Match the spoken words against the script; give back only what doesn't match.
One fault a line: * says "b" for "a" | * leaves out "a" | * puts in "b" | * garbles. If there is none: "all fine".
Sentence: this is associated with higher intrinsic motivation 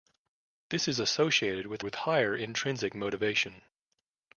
* puts in "with"